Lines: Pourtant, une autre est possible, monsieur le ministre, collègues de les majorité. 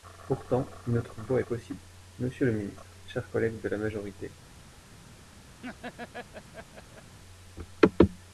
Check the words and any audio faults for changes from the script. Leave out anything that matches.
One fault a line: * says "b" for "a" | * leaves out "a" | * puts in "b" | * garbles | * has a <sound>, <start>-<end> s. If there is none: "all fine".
* puts in "voie"
* puts in "chers"
* says "la" for "les"
* has a laugh, 5.6-7.2 s